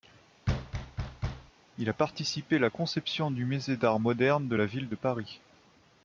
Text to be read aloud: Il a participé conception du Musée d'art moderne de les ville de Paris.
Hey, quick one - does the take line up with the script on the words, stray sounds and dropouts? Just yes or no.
no